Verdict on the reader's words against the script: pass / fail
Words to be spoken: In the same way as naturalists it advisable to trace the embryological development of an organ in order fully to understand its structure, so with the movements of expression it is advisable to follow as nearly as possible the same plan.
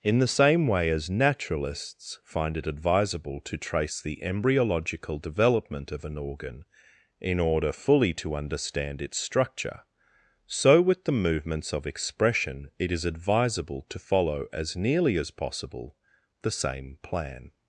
fail